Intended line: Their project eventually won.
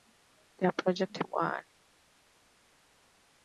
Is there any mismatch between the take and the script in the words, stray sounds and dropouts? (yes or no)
yes